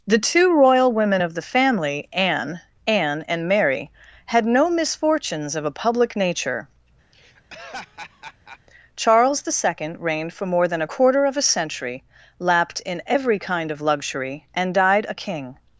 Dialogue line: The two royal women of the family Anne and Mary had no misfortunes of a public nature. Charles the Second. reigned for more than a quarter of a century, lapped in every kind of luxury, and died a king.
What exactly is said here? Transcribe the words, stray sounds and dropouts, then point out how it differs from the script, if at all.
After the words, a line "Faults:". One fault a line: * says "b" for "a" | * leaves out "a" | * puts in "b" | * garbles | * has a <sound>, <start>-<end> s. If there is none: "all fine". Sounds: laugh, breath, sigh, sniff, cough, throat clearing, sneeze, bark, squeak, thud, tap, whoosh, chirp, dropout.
The two royal women of the family Anne Anne and Mary had no misfortunes of a public nature. Charles the Second. reigned for more than a quarter of a century, lapped in every kind of luxury, and died a king.
Faults:
* puts in "Anne"
* has a laugh, 7.1-8.6 s